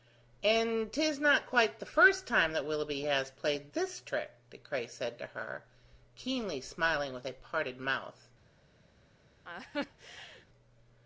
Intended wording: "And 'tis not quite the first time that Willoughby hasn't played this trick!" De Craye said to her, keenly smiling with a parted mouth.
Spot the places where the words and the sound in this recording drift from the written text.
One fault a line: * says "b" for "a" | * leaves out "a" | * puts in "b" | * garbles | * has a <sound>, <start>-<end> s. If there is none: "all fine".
* says "has" for "hasn't"
* has a laugh, 9.4-10.5 s